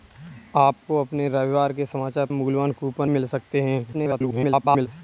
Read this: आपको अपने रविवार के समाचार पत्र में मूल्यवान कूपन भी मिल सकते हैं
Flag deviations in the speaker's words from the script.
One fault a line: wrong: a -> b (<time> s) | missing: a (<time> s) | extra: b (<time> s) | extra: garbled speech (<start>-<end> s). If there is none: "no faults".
missing: पत्र में (2.2 s)
missing: भी (3.1 s)
extra: garbled speech (3.9-4.9 s)